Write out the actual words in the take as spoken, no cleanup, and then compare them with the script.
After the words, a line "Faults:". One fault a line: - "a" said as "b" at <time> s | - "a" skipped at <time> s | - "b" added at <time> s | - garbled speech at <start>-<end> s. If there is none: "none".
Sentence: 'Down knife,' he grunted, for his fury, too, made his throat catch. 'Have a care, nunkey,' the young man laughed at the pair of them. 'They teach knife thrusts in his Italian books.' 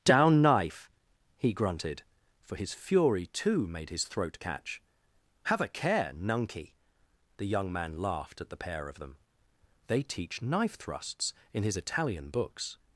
'Down knife,' he grunted, for his fury, too, made his throat catch. 'Have a care, nunkey,' the young man laughed at the pair of them. 'They teach knife thrusts in his Italian books.'
Faults:
none